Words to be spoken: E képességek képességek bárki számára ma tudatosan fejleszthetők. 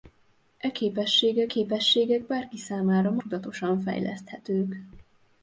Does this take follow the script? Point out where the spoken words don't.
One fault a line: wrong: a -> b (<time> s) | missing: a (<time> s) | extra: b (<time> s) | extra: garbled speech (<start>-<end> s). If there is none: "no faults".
no faults